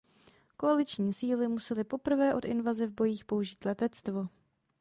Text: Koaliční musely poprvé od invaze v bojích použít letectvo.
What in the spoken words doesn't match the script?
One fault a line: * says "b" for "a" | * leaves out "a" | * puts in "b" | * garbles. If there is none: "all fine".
* puts in "síly"